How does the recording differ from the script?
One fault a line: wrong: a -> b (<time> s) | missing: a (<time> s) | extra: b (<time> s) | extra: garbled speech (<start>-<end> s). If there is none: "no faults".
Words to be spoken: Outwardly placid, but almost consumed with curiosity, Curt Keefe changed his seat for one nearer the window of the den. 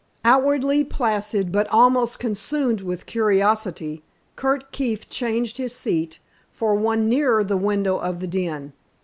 no faults